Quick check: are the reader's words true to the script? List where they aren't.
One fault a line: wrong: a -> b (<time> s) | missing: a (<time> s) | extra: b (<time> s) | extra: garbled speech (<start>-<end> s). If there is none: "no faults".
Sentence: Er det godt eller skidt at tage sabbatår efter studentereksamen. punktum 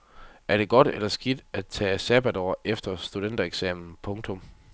no faults